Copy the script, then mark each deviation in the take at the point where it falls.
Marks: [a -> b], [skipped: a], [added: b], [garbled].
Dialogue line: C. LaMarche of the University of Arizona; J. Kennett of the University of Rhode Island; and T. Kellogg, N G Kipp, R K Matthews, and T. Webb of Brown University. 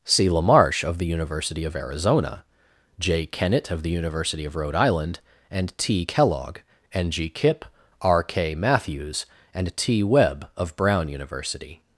C. LaMarche of the University of Arizona; J. Kennett of the University of Rhode Island; and T. Kellogg, N G Kipp, R K Matthews, and T. Webb of Brown University.